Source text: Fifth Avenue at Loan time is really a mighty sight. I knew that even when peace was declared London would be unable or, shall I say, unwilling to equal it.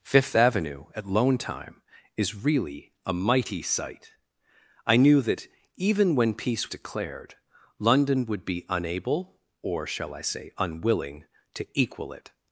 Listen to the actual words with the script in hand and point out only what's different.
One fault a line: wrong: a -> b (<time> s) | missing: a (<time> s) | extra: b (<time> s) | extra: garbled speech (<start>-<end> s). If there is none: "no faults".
missing: was (6.7 s)